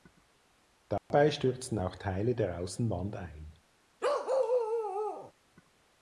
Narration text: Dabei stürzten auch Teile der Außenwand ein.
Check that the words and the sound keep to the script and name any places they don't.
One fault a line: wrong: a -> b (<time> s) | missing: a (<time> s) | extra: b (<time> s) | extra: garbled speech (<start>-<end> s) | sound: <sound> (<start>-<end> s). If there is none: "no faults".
sound: dropout (1.0-1.1 s)
sound: bark (4.0-5.3 s)